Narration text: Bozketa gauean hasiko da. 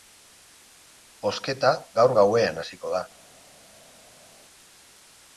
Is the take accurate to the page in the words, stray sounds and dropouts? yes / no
no